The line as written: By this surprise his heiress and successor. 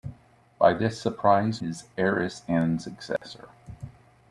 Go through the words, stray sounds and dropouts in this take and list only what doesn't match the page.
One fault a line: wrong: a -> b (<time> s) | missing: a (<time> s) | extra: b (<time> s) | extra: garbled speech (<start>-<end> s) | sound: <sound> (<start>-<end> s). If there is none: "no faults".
sound: dropout (3.2-3.2 s)